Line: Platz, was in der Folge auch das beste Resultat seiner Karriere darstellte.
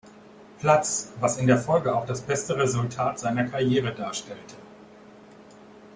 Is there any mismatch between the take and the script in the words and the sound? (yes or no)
no